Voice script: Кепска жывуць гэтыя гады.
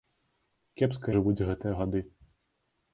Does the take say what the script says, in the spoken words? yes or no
yes